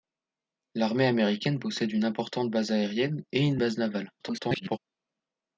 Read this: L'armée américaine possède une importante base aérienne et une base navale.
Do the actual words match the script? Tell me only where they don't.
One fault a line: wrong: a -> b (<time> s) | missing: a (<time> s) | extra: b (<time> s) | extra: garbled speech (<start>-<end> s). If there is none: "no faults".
extra: garbled speech (4.2-4.8 s)